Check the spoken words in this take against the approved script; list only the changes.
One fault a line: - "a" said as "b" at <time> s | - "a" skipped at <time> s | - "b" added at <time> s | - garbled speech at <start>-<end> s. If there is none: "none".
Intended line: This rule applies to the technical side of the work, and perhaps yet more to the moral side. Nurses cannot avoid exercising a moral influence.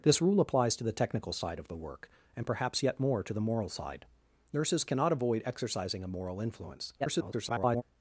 - garbled speech at 7.0-7.8 s